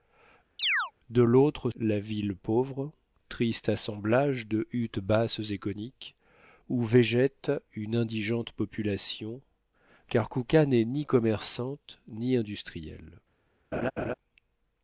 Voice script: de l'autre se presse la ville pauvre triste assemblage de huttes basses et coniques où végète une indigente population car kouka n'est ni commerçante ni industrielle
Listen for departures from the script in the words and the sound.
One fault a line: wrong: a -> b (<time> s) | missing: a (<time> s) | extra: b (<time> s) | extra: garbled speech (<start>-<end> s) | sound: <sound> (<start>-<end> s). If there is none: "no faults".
sound: chirp (0.6-0.9 s)
missing: se presse (1.7 s)
sound: laugh (13.7-14.1 s)